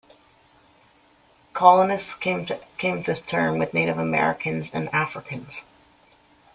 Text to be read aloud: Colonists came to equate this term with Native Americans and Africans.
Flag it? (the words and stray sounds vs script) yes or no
yes